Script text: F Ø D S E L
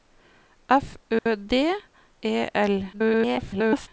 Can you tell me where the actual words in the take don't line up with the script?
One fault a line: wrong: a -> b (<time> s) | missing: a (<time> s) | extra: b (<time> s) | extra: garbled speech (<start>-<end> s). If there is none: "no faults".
missing: S (1.5 s)
extra: garbled speech (2.9-3.9 s)